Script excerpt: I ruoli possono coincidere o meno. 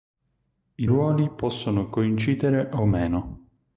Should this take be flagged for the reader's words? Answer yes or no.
no